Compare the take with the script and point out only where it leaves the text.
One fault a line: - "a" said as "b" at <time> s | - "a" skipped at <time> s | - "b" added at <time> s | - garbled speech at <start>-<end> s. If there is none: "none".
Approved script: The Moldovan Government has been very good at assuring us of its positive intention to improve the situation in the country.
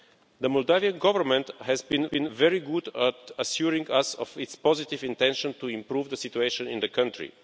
- "been" added at 2.0 s